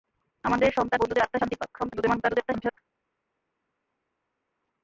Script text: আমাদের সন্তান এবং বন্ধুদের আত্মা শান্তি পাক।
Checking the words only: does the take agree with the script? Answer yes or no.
no